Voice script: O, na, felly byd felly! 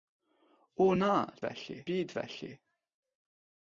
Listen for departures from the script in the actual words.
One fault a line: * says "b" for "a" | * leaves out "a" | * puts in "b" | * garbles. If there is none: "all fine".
all fine